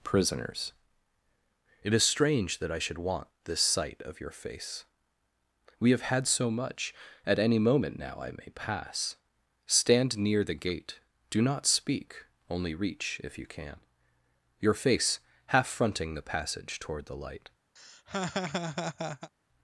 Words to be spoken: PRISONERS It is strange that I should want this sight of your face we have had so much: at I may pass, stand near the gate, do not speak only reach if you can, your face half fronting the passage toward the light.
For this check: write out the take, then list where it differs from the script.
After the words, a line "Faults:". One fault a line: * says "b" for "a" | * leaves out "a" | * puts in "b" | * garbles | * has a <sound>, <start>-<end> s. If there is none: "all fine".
PRISONERS It is strange that I should want this sight of your face we have had so much: at any moment now I may pass, stand near the gate, do not speak only reach if you can, your face half fronting the passage toward the light.
Faults:
* puts in "any moment now"
* has a laugh, 17.8-19.3 s